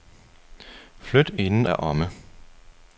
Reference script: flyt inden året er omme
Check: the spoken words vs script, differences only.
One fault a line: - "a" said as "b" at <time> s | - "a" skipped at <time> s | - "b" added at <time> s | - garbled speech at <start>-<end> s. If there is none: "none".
- "året" skipped at 1.7 s